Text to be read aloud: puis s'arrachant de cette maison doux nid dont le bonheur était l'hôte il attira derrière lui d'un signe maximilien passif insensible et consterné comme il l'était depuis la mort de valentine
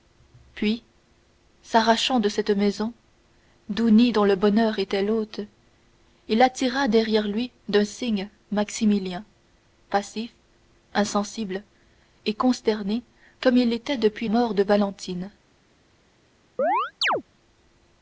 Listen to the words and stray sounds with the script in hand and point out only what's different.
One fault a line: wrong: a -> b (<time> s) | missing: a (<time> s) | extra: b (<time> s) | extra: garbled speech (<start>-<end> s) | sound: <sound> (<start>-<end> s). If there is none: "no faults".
missing: la (14.3 s)
sound: chirp (16.6-17.2 s)